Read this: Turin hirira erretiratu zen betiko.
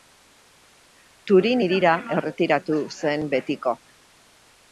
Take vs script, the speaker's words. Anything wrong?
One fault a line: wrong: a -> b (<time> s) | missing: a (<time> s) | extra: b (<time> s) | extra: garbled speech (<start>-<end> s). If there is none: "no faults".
no faults